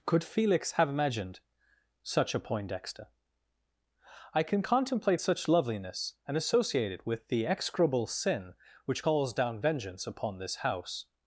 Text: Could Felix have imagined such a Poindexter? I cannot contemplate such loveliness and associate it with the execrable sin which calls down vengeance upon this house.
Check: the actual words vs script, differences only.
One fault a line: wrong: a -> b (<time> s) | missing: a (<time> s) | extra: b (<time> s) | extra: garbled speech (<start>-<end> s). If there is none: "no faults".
wrong: cannot -> can (4.4 s)